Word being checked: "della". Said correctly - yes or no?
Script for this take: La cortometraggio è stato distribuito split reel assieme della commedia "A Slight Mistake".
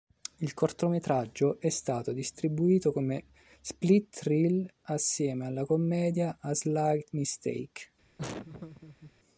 no